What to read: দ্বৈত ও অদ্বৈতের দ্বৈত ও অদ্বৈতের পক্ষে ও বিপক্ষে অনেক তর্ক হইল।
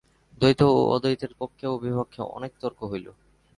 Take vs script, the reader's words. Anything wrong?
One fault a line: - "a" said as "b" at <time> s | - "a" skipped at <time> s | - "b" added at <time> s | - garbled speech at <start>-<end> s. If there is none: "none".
- "দ্বৈত ও অদ্বৈতের" skipped at 1.3 s